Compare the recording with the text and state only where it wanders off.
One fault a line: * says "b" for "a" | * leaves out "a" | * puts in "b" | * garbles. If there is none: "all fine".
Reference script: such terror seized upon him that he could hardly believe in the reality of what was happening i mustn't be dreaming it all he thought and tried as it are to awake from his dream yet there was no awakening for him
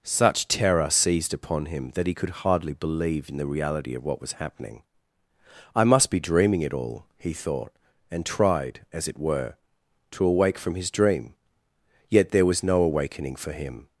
* says "must" for "mustn't"
* says "were" for "are"